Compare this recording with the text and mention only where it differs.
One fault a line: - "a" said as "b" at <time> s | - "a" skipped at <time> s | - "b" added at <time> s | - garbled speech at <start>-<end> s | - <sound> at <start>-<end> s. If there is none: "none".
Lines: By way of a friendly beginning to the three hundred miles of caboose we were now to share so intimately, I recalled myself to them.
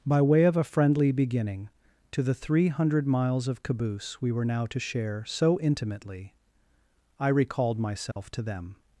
- dropout at 8.1-8.2 s